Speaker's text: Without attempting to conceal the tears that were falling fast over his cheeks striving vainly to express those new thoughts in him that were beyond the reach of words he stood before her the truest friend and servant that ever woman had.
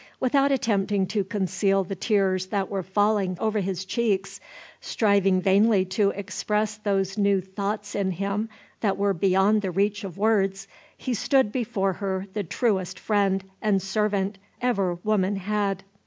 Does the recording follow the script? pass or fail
fail